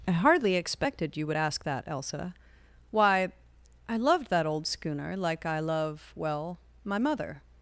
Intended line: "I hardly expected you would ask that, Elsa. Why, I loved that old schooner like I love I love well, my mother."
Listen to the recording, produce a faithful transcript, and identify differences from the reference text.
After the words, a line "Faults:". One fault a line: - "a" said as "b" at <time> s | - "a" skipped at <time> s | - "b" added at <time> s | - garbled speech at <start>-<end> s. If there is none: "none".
"I hardly expected you would ask that, Elsa. Why, I loved that old schooner like I love well, my mother."
Faults:
- "I love" skipped at 6.1 s